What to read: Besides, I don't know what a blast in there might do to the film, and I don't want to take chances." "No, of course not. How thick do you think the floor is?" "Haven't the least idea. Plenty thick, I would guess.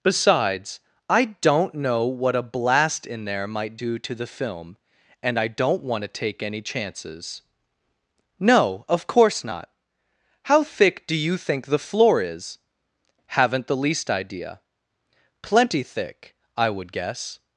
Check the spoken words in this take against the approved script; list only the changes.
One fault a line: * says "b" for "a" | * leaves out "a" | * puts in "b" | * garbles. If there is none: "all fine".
* puts in "any"